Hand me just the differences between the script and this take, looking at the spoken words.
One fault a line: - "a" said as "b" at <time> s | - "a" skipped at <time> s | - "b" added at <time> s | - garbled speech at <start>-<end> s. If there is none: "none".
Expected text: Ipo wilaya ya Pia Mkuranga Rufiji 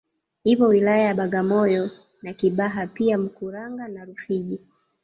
- "Bagamoyo na Kibaha" added at 1.1 s
- "na" added at 3.9 s